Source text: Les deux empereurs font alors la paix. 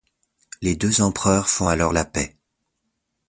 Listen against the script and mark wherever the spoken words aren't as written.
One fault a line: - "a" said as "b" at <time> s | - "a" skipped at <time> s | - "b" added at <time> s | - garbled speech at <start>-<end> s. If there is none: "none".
none